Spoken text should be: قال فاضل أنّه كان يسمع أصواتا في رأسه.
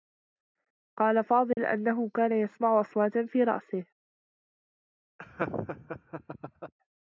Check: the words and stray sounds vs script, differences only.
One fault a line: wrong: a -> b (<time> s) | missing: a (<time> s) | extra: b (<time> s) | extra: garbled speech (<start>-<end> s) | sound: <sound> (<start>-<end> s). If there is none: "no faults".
sound: dropout (1.5-1.6 s)
sound: laugh (5.2-6.7 s)